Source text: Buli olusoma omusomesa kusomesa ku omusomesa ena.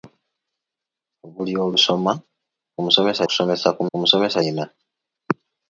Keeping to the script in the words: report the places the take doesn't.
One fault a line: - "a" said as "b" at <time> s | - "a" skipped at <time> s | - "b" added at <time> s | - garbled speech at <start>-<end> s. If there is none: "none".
none